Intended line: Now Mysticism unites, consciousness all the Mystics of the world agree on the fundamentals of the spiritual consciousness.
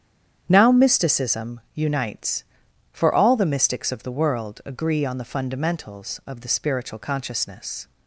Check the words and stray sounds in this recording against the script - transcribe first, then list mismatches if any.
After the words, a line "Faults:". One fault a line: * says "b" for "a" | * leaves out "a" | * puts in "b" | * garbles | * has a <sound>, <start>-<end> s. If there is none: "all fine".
Now Mysticism unites, for all the Mystics of the world agree on the fundamentals of the spiritual consciousness.
Faults:
* says "for" for "consciousness"